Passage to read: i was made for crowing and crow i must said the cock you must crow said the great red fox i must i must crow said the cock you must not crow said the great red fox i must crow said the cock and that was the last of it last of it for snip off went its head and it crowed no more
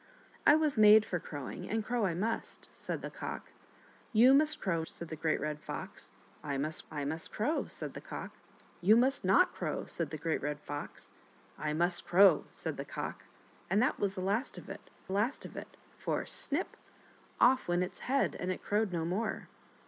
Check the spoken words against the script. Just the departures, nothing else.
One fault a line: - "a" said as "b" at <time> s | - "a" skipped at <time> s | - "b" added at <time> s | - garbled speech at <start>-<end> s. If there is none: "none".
none